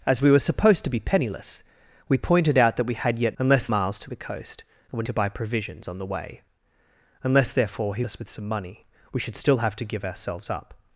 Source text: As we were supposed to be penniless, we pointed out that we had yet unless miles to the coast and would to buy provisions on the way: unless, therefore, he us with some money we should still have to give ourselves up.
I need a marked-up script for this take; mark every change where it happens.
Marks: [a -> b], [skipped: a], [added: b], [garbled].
As we were supposed to be penniless, we pointed out that we had yet unless miles to the coast and would to buy provisions on the way: unless, therefore, he us with some money we should still have to give ourselves up.